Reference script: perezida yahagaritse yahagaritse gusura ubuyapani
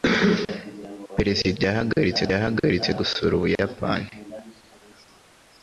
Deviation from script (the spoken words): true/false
false